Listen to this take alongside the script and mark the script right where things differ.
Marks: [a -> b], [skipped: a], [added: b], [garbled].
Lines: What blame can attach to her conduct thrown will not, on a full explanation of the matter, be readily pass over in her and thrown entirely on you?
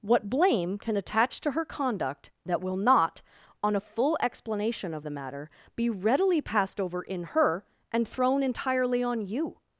What blame can attach to her conduct [thrown -> that] will not, on a full explanation of the matter, be readily [pass -> passed] over in her and thrown entirely on you?